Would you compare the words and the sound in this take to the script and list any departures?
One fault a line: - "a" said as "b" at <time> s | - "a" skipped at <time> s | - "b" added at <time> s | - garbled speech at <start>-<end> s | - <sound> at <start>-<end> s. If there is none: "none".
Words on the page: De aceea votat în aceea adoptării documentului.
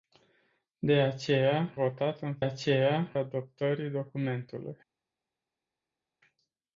none